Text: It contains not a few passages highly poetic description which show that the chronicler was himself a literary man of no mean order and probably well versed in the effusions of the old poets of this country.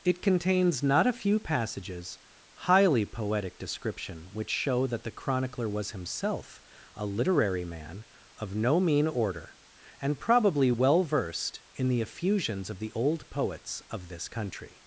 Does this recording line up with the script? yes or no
yes